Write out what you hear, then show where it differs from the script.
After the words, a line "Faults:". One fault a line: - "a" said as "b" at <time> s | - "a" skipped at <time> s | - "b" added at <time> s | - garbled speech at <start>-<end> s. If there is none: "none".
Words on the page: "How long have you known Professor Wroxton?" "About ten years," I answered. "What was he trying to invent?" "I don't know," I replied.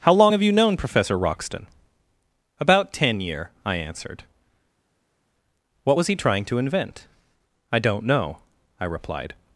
"How long have you known Professor Wroxton?" "About ten year," I answered. "What was he trying to invent?" "I don't know," I replied.
Faults:
- "years" said as "year" at 3.2 s